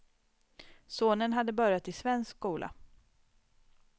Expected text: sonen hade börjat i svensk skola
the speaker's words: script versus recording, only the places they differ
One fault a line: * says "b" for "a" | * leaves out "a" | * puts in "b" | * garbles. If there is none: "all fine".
all fine